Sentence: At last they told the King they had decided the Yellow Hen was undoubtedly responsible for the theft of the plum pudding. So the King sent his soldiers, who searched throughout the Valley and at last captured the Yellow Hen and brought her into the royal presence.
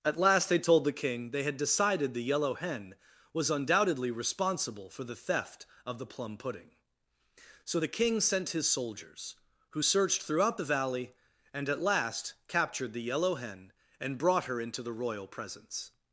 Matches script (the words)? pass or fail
pass